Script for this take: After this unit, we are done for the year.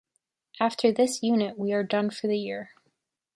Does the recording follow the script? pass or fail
pass